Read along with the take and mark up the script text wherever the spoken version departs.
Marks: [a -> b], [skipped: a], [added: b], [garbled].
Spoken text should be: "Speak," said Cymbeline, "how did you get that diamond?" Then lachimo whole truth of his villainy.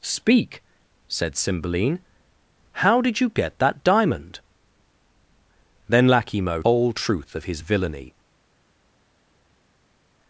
"Speak," said Cymbeline, "how did you get that diamond?" Then lachimo whole truth of his villainy.